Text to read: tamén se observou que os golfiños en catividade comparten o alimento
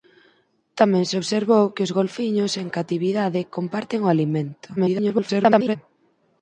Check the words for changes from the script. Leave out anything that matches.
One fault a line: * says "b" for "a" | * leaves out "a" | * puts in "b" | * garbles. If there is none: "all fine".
* garbles